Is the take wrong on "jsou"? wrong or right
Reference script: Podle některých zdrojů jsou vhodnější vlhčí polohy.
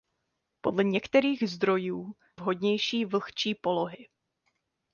wrong